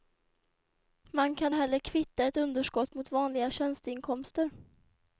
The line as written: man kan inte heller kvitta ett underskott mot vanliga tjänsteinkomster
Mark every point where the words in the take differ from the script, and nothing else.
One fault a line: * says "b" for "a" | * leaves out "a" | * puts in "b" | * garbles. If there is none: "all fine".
* leaves out "inte"